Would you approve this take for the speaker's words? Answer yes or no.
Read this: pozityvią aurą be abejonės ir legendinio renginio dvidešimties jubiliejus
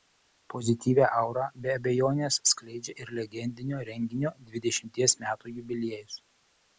no